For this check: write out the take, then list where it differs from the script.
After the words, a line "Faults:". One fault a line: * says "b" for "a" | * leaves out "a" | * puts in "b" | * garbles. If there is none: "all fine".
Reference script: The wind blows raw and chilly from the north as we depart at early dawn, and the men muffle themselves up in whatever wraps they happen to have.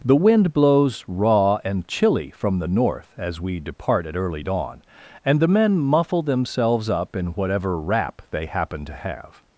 The wind blows raw and chilly from the north as we depart at early dawn, and the men muffle themselves up in whatever wrap they happen to have.
Faults:
* says "wrap" for "wraps"